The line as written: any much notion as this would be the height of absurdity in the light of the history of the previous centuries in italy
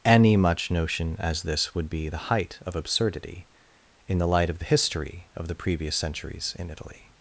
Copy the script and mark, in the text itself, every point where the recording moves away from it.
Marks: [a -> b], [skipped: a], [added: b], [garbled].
any much notion as this would be the height of absurdity in the light of the history of the previous centuries in italy